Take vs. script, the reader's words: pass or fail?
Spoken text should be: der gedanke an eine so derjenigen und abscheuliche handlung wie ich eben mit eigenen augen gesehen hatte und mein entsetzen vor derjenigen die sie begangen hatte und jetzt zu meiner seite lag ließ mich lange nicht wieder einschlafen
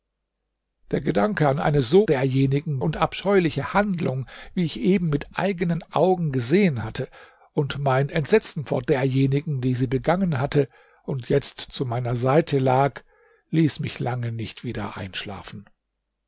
pass